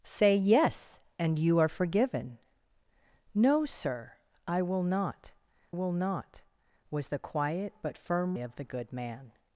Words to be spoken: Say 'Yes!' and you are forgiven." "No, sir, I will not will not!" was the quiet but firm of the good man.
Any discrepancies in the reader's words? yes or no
no